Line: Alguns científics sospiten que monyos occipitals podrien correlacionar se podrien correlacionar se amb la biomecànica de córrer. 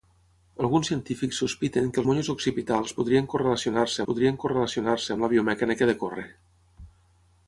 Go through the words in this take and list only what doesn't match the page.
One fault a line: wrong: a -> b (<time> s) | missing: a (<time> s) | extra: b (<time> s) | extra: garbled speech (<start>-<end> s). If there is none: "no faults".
no faults